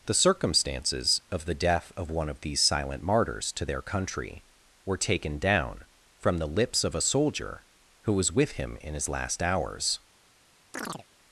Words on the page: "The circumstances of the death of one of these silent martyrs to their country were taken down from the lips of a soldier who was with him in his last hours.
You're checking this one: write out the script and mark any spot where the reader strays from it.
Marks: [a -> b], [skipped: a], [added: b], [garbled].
"The circumstances of the death of one of these silent martyrs to their country were taken down from the lips of a soldier who was with him in his last hours.